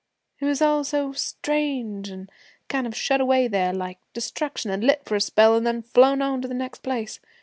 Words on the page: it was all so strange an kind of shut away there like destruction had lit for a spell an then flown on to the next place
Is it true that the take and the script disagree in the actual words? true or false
false